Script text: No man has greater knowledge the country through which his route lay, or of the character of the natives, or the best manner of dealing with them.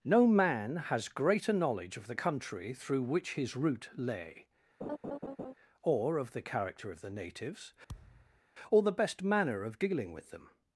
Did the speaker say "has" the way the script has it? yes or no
yes